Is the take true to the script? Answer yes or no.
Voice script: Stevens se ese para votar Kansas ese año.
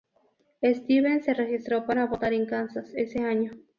no